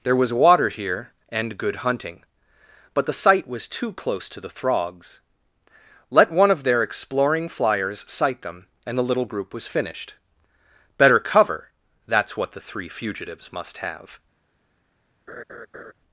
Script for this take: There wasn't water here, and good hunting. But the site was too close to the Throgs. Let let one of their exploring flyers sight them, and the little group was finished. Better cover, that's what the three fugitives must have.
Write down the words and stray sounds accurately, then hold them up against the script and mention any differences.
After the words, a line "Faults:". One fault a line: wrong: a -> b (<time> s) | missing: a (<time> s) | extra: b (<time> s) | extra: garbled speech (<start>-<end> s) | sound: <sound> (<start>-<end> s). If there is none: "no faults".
There was water here, and good hunting. But the site was too close to the Throgs. Let one of their exploring flyers sight them, and the little group was finished. Better cover, that's what the three fugitives must have.
Faults:
wrong: wasn't -> was (0.1 s)
missing: let (6.3 s)
sound: laugh (15.3-15.9 s)